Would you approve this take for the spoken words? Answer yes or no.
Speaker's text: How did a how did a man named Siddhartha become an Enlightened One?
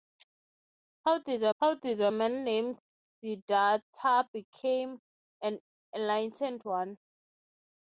yes